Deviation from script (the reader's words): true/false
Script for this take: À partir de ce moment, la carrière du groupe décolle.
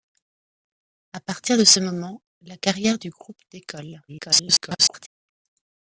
true